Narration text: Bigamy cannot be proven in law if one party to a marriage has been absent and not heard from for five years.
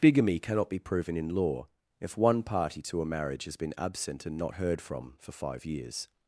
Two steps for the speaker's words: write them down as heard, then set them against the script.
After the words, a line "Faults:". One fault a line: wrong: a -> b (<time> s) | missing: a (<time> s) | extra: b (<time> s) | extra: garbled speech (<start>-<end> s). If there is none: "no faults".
Bigamy cannot be proven in law if one party to a marriage has been absent and not heard from for five years.
Faults:
no faults